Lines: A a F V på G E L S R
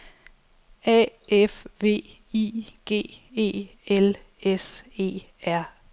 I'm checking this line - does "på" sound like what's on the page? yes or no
no